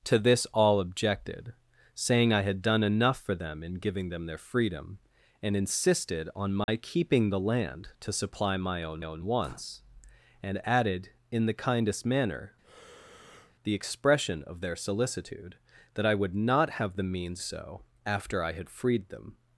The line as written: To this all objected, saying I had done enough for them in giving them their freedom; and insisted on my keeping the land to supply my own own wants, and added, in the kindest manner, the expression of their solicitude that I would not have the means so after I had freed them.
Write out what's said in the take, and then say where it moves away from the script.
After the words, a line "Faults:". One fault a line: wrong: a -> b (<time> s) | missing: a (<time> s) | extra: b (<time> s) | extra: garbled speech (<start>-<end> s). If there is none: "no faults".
To this all objected, saying I had done enough for them in giving them their freedom; and insisted on my keeping the land to supply my own own wants, and added, in the kindest manner, the expression of their solicitude that I would not have the means so after I had freed them.
Faults:
no faults